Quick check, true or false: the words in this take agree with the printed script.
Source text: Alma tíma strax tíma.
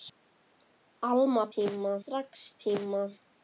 true